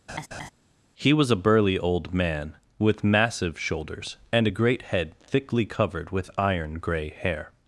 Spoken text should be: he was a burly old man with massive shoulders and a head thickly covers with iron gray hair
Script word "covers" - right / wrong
wrong